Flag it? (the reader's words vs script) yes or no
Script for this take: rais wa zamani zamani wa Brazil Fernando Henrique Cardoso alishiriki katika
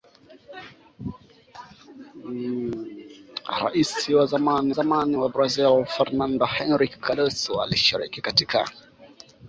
no